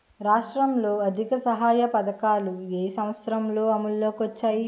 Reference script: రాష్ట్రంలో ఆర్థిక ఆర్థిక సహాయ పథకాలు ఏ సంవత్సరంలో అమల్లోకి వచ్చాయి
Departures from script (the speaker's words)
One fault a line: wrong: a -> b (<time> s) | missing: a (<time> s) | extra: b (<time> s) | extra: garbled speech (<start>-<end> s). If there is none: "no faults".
missing: ఆర్థిక (1.4 s)